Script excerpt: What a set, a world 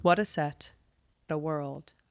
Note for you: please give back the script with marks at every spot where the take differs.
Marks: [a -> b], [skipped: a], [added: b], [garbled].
What a set, a world